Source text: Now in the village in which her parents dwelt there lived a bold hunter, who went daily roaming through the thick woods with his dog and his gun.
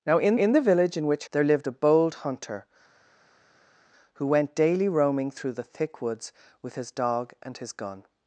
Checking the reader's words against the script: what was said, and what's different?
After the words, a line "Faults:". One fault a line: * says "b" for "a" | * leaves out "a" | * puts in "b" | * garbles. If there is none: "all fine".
Now in in the village in which there lived a bold hunter, who went daily roaming through the thick woods with his dog and his gun.
Faults:
* puts in "in"
* leaves out "her parents dwelt"